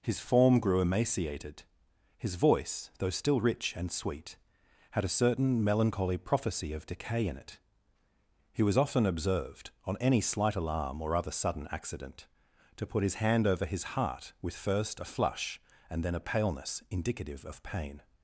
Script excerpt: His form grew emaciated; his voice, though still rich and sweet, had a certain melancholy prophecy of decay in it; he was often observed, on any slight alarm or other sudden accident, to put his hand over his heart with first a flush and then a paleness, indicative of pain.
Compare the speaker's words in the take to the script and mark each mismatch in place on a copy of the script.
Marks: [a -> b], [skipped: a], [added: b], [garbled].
His form grew emaciated; his voice, though still rich and sweet, had a certain melancholy prophecy of decay in it; he was often observed, on any slight alarm or other sudden accident, to put his hand over his heart with first a flush and then a paleness, indicative of pain.